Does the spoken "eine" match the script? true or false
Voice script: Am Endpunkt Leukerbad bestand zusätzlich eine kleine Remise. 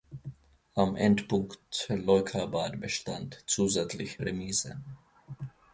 false